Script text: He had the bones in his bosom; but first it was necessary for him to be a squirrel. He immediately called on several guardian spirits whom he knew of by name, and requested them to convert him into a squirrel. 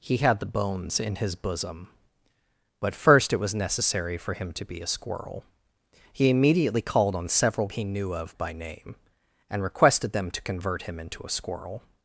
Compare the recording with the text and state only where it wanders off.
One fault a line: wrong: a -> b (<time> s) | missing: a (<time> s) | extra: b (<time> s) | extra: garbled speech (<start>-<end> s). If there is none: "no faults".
missing: guardian spirits whom (7.7 s)